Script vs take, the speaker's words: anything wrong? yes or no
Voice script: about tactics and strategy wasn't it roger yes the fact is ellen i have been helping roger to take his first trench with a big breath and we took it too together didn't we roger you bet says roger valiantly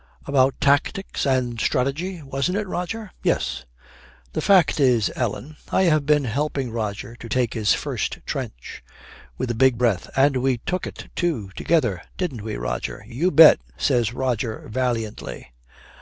no